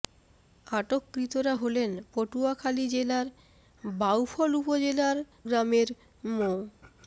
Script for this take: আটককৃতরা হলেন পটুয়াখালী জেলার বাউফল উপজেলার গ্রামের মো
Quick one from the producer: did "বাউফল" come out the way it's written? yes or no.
yes